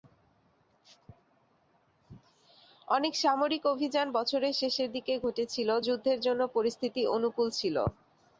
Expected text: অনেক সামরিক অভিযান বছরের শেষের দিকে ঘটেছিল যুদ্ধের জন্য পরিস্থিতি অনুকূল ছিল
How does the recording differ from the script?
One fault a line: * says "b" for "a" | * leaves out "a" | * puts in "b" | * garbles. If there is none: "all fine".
all fine